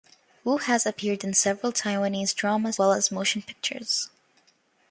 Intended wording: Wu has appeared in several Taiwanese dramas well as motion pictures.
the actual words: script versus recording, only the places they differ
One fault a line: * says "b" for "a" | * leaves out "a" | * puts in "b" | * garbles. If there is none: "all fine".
all fine